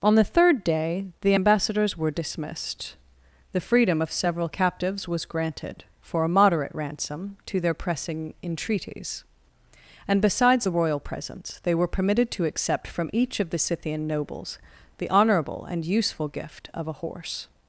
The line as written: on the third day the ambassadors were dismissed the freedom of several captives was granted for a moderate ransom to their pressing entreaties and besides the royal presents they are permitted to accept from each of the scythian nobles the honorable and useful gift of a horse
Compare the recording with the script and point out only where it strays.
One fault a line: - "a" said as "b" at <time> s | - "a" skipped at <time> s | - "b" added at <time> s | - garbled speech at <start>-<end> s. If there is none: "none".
- "are" said as "were" at 11.7 s